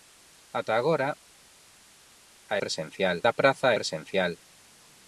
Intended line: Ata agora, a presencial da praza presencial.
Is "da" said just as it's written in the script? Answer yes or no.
yes